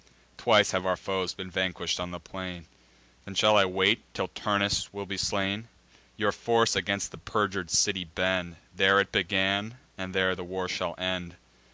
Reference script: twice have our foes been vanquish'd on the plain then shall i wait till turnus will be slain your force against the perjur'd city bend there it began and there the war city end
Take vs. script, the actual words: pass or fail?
fail